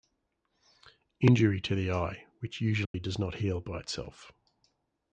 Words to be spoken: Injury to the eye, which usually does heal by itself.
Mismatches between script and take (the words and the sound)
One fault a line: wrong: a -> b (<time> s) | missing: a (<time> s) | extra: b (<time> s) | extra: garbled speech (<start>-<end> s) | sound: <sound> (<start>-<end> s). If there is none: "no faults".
sound: dropout (2.8-2.9 s)
extra: not (3.2 s)